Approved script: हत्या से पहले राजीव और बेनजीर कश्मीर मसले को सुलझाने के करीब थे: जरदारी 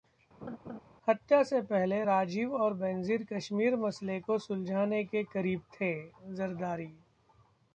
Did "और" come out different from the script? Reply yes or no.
no